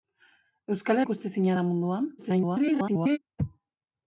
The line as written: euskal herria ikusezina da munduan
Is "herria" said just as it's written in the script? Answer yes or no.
no